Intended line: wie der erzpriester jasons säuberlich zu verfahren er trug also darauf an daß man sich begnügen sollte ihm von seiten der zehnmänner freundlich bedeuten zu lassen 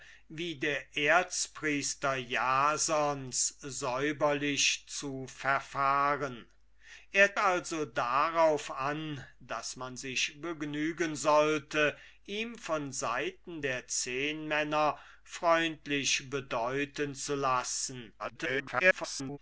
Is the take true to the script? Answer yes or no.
no